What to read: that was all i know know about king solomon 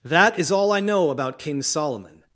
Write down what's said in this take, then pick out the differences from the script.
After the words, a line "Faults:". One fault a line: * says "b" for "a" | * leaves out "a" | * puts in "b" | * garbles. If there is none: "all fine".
that is all i know about king solomon
Faults:
* says "is" for "was"
* leaves out "know"